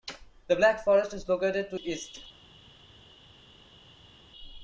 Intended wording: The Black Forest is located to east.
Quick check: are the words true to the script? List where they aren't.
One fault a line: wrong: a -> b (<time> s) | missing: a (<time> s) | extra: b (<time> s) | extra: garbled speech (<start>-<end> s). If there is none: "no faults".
no faults